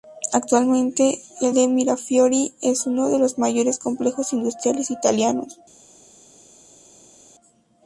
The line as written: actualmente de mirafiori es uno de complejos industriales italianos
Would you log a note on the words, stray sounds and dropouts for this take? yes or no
yes